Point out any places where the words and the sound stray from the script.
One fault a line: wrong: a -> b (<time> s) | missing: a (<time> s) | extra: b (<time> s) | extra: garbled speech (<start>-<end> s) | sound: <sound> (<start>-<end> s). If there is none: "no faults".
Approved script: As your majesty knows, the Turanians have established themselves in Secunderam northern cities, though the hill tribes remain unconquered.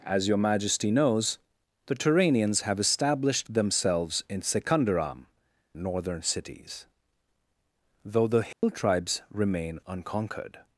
sound: dropout (8.5-8.6 s)